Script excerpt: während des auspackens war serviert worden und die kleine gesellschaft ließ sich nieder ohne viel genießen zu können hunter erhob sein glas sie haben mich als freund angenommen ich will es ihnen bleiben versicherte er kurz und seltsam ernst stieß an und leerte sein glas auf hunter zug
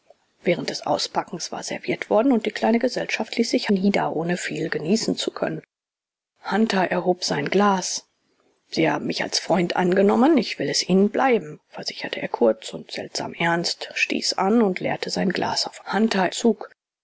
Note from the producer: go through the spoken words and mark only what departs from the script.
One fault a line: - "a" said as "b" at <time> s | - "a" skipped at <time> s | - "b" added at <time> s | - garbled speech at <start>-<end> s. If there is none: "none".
none